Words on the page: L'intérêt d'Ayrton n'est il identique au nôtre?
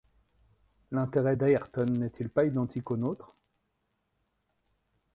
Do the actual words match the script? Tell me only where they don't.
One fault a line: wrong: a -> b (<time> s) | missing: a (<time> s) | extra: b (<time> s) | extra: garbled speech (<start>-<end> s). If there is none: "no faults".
extra: pas (2.3 s)